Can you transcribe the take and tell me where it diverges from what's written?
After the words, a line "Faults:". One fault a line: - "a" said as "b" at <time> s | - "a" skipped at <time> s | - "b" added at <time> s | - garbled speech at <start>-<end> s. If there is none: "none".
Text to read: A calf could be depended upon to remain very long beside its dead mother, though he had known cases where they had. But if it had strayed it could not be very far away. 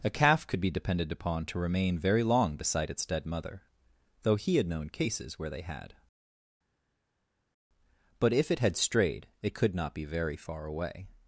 A calf could be depended upon to remain very long beside its dead mother, though he had known cases where they had. But if it had strayed it could not be very far away.
Faults:
none